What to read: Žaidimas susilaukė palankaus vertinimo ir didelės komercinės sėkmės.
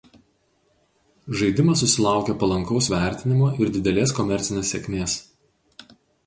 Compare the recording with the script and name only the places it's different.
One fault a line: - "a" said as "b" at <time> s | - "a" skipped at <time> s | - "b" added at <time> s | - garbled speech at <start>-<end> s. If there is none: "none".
none